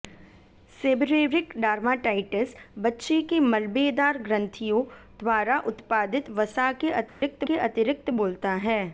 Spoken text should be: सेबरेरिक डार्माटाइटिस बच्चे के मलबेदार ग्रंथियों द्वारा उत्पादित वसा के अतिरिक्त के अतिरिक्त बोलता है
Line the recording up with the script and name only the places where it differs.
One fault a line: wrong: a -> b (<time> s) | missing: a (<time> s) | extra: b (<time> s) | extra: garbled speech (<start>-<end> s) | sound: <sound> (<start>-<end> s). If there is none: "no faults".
sound: dropout (7.1-7.2 s)